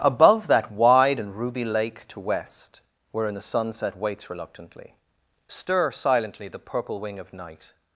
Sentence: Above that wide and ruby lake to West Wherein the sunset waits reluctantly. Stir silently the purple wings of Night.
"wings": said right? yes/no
no